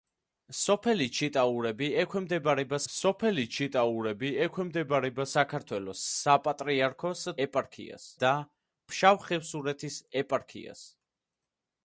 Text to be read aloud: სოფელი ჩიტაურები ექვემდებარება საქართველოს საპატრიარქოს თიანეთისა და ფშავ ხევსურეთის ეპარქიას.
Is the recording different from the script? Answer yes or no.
yes